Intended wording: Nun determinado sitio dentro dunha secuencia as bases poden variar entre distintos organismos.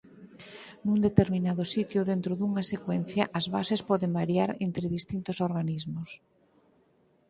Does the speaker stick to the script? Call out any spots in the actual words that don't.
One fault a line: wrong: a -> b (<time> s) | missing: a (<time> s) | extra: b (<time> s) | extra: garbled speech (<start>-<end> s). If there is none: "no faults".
no faults